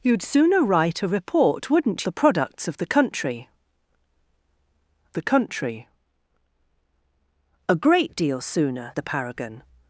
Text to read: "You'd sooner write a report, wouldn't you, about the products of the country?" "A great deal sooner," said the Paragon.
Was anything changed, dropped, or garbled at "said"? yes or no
yes